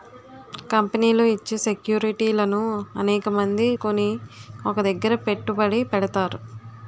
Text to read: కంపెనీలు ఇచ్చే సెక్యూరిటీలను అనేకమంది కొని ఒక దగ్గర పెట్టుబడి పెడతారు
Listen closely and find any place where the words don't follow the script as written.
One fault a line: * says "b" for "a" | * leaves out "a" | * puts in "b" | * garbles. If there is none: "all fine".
all fine